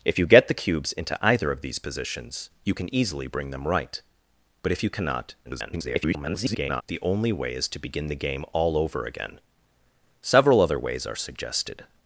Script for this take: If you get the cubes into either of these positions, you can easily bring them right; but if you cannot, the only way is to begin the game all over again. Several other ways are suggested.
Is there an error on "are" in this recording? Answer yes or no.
no